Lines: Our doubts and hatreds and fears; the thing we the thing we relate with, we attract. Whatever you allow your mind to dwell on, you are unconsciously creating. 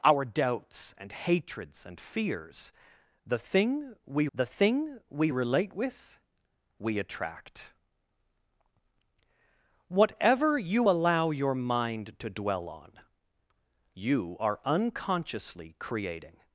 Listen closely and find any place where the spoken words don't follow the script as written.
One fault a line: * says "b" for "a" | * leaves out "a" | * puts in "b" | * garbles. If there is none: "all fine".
all fine